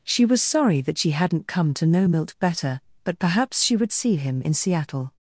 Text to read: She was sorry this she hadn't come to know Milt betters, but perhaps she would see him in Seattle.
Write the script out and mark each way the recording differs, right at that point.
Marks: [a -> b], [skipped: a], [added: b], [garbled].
She was sorry [this -> that] she hadn't come to know Milt [betters, -> better] but perhaps she would see him in Seattle.